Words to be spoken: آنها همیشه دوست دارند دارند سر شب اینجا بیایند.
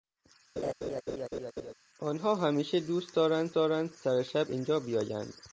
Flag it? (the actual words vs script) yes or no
no